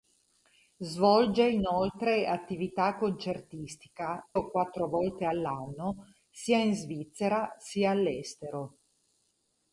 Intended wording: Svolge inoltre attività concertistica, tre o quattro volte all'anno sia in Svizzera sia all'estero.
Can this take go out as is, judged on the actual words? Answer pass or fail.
fail